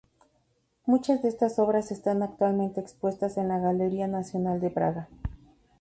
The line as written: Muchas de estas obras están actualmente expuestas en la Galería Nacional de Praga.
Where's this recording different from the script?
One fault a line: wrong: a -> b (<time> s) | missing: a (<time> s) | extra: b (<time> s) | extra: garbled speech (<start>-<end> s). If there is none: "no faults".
no faults